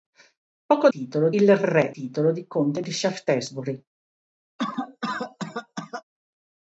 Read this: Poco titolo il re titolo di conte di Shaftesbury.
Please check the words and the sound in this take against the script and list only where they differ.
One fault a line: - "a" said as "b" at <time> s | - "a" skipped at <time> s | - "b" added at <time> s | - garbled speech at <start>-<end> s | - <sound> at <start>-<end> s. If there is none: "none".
- cough at 4.6-6.0 s